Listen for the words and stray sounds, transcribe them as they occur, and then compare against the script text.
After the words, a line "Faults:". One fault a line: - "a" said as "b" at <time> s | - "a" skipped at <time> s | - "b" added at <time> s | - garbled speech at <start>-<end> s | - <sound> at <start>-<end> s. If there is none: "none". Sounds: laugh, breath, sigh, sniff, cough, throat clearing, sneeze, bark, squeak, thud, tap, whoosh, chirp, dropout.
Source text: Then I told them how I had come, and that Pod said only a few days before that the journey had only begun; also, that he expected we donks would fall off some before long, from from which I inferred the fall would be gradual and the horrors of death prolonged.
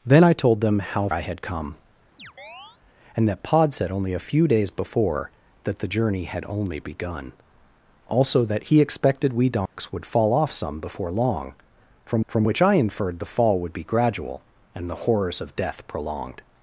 Then I told them how I had come, and that Pod said only a few days before that the journey had only begun; also, that he expected we donks would fall off some before long, from from which I inferred the fall would be gradual and the horrors of death prolonged.
Faults:
- chirp at 2.2-2.8 s
- dropout at 9.7-9.8 s